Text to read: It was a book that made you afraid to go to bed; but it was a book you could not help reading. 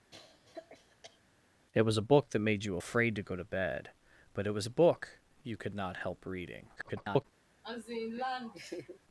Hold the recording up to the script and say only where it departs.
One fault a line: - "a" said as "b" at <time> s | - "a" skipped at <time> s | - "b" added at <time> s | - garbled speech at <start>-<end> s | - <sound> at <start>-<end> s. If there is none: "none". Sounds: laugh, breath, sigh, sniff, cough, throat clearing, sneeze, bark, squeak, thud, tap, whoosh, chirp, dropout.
- cough at 0.1-1.2 s
- garbled speech at 6.8-7.3 s
- laugh at 7.6-9.0 s